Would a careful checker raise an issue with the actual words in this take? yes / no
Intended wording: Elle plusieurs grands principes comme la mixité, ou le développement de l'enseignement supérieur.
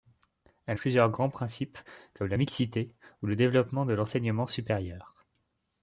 no